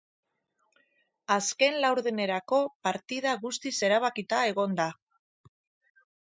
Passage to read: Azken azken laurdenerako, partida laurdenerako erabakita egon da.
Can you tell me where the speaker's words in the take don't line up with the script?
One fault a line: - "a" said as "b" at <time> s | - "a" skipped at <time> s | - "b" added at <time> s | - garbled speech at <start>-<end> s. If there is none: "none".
- "azken" skipped at 1.8 s
- "laurdenerako" said as "guztiz" at 3.5 s